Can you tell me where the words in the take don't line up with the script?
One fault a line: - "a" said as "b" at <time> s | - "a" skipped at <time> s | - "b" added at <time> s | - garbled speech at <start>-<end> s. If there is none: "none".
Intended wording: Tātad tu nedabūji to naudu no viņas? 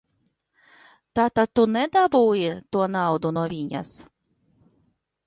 none